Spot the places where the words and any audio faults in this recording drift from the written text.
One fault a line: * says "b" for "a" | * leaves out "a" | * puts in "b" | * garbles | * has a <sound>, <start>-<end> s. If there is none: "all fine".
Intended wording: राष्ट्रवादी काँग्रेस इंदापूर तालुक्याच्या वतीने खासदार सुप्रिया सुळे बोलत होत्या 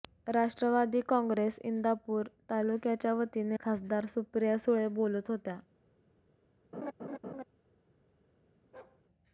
* has a laugh, 6.7-7.4 s
* has a bark, 8.7-9.0 s